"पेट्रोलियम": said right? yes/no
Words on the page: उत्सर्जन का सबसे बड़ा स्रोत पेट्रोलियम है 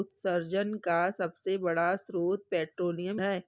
yes